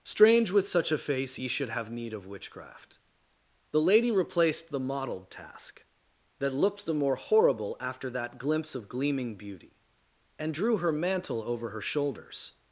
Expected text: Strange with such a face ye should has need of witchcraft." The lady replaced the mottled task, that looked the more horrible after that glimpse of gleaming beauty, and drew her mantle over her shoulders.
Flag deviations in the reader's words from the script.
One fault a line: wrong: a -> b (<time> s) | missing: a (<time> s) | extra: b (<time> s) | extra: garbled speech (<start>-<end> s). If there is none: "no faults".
wrong: has -> have (1.7 s)